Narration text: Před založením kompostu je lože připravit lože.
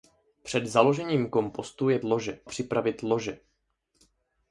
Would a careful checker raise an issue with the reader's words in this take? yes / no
no